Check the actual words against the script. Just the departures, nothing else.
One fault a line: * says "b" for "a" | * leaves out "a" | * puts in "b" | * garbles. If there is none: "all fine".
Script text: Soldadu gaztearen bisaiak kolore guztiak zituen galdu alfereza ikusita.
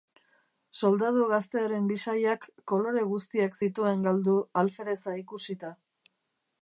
all fine